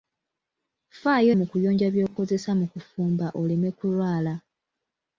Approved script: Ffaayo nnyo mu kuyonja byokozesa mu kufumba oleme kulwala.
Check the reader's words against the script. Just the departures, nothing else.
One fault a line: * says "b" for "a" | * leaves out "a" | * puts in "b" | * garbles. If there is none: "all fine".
* leaves out "nnyo"